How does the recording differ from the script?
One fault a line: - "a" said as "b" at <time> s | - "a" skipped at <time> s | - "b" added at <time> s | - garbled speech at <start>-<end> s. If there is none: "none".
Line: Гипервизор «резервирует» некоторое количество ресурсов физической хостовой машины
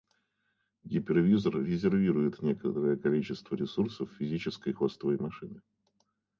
none